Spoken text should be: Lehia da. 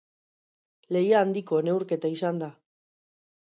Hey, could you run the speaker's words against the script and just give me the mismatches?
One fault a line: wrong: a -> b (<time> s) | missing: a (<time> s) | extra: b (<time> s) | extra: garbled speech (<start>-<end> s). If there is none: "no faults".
extra: handiko neurketa izan (1.2 s)